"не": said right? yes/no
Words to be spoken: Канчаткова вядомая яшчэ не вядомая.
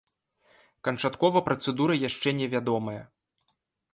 yes